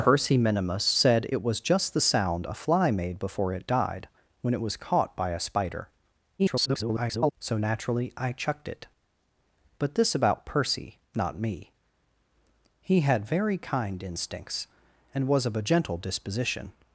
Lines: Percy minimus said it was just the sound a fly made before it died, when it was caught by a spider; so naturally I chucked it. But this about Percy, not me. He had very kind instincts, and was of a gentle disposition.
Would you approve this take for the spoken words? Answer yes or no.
no